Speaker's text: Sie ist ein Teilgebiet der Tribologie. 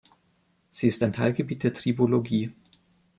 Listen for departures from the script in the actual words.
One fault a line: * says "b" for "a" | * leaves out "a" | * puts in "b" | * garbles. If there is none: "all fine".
all fine